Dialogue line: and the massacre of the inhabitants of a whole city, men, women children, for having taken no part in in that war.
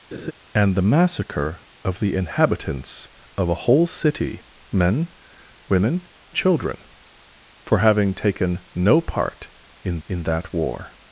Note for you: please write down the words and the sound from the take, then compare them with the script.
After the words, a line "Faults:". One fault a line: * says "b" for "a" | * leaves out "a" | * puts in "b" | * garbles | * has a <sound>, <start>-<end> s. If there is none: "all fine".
and the massacre of the inhabitants of a whole city, men, women children, for having taken no part in in that war.
Faults:
* has a laugh, 0.1-0.3 s